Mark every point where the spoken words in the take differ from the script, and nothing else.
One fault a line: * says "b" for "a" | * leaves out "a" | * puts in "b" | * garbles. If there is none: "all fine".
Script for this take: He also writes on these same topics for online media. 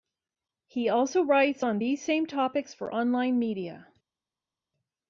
all fine